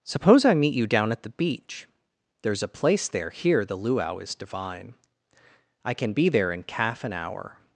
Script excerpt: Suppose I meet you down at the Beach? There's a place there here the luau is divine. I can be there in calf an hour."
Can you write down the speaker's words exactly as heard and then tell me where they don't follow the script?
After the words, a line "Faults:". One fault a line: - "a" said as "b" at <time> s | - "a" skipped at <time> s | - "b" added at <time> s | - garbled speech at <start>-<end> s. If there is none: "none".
Suppose I meet you down at the Beach? There's a place there here the luau is divine. I can be there in calf an hour."
Faults:
none